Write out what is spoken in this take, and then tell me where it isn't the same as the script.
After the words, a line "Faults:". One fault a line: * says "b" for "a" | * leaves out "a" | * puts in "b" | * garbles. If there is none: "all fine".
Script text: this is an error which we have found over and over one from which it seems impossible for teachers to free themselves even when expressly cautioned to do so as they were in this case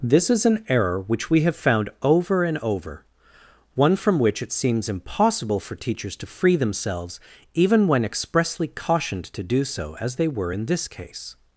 this is an error which we have found over and over one from which it seems impossible for teachers to free themselves even when expressly cautioned to do so as they were in this case
Faults:
all fine